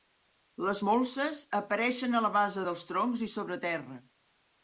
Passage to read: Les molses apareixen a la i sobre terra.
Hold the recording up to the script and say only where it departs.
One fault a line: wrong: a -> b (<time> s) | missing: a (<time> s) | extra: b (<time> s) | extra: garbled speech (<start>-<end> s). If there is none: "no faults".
extra: base dels troncs (2.4 s)